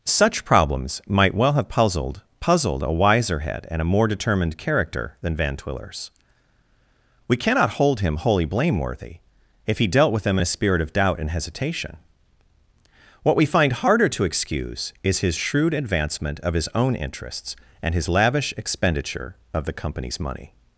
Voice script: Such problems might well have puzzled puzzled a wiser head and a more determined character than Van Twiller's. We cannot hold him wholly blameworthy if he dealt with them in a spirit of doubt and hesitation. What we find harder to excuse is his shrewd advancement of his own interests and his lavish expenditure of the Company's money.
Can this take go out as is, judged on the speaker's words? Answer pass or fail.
pass